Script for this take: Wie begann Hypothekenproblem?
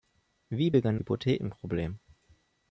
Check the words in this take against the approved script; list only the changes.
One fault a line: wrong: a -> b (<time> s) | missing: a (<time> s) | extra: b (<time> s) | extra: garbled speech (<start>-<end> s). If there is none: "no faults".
no faults